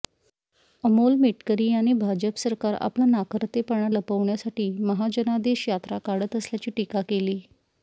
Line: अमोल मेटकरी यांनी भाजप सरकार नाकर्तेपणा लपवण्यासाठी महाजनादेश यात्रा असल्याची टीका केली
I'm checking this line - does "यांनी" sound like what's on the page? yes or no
yes